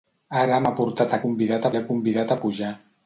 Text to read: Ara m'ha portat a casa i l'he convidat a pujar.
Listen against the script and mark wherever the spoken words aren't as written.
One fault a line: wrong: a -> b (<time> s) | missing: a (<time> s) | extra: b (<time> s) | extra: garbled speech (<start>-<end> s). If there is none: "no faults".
wrong: casa -> convidat (1.3 s)